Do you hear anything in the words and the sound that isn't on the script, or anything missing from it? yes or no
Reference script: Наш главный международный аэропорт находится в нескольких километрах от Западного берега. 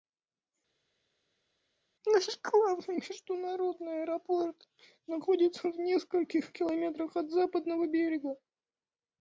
no